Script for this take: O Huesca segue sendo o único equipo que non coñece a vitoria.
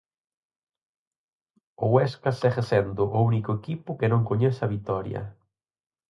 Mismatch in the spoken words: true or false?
false